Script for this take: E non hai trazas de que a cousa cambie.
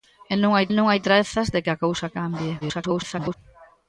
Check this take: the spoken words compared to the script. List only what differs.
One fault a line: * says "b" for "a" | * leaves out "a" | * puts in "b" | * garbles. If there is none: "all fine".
* puts in "non hai"
* garbles